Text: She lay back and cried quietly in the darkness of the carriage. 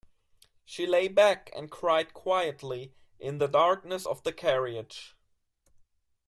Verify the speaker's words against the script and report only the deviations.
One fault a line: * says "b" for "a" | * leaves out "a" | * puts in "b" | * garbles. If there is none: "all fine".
all fine